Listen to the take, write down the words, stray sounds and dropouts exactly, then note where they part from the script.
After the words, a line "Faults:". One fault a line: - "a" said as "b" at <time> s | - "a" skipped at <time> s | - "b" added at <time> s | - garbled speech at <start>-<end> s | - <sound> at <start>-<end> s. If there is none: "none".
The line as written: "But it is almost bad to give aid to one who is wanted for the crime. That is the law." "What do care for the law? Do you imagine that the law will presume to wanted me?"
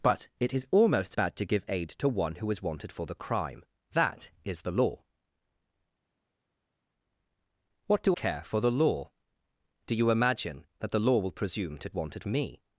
"But it is almost bad to give aid to one who is wanted for the crime. That is the law." "What do care for the law? Do you imagine that the law will presume to wanted me?"
Faults:
none